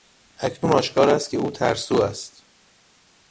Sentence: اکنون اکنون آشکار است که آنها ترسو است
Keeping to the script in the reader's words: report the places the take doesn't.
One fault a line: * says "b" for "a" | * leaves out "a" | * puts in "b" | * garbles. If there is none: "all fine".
* leaves out "اکنون"
* says "او" for "آنها"